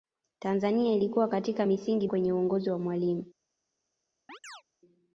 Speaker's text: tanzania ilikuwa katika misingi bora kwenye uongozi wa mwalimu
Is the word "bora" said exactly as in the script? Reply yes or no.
no